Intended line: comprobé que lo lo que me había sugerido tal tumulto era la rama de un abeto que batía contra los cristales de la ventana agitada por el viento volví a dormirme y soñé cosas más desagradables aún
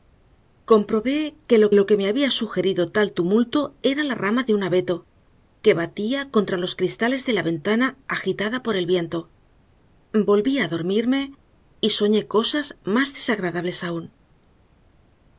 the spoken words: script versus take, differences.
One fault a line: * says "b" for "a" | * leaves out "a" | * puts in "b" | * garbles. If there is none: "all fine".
all fine